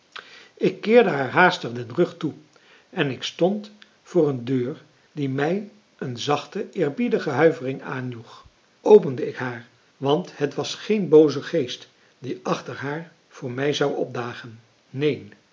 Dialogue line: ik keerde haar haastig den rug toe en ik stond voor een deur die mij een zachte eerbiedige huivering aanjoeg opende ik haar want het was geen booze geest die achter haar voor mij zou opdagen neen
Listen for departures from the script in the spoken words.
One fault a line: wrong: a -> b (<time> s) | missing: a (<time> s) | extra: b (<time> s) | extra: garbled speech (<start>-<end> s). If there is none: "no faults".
no faults